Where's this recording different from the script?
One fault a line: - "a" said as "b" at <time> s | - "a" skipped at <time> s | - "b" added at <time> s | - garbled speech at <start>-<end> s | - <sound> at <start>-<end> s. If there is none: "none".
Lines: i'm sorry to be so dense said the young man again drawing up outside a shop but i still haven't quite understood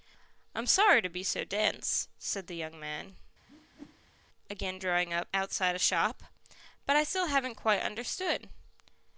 - whoosh at 3.5-4.2 s